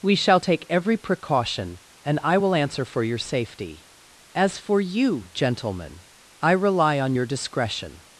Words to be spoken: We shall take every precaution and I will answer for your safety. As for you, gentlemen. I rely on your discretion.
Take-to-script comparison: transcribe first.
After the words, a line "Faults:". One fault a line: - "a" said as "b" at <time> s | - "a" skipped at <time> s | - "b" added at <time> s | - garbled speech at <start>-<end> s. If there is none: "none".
We shall take every precaution and I will answer for your safety. As for you, gentlemen. I rely on your discretion.
Faults:
none